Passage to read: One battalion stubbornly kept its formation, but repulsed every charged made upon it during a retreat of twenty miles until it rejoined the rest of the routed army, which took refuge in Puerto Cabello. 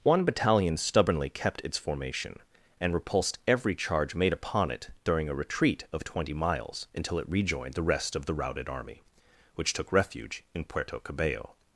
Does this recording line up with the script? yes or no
no